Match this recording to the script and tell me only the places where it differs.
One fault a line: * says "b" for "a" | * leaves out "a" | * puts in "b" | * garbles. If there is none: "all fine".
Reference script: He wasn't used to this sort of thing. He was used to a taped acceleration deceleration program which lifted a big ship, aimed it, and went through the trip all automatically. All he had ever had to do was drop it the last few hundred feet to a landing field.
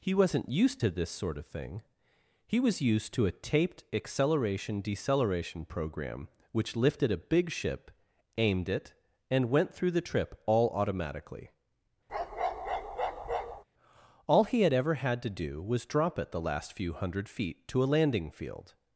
all fine